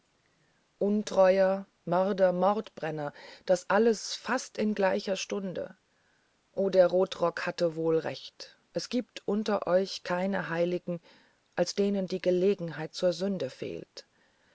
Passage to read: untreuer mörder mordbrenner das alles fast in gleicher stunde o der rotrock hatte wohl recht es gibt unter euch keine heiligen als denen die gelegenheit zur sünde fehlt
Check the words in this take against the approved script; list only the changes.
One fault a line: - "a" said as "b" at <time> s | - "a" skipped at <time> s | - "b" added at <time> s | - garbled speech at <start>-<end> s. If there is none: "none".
none